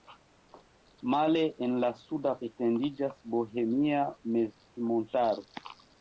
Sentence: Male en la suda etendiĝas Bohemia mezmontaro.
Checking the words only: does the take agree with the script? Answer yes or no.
yes